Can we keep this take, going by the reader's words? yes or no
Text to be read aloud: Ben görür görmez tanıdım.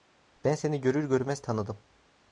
no